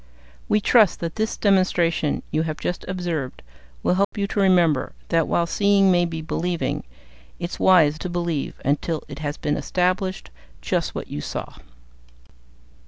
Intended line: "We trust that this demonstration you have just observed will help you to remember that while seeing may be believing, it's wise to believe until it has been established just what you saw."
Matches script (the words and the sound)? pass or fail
fail